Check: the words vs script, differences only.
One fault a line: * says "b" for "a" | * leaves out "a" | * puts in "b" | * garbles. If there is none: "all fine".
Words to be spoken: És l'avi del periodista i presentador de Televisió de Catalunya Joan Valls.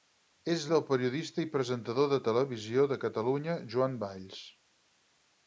* leaves out "l'avi"